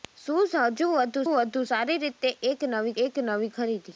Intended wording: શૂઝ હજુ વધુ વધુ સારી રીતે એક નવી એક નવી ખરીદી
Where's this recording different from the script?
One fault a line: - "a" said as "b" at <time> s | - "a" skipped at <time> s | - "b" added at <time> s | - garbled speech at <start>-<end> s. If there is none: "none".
none